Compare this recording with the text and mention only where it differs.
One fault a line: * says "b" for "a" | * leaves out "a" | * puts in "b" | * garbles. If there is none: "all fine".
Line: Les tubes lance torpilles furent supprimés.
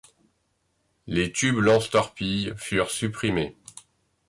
all fine